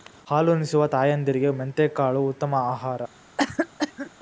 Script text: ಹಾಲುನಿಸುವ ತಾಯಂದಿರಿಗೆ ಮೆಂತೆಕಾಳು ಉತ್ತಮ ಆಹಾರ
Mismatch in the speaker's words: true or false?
false